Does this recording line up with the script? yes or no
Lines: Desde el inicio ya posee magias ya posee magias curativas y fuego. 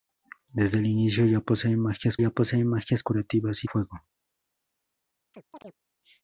yes